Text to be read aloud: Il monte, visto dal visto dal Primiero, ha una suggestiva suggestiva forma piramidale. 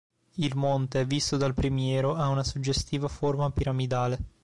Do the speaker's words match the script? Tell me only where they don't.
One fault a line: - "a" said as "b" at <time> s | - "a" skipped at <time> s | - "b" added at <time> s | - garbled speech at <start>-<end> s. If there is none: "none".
- "visto dal" skipped at 1.5 s
- "suggestiva" skipped at 3.1 s